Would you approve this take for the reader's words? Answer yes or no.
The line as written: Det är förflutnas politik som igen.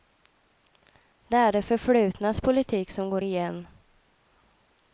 no